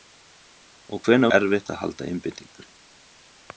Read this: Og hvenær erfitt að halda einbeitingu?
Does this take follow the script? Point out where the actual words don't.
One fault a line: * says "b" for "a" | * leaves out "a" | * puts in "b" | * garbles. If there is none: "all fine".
all fine